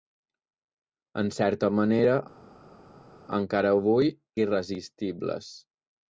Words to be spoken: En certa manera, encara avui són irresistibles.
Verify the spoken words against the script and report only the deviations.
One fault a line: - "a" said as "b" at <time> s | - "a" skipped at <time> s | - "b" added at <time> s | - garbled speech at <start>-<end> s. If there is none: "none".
- "són" skipped at 4.1 s